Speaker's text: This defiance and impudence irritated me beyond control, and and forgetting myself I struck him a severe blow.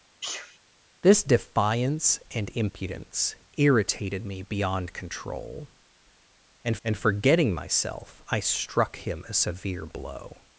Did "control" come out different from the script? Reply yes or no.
no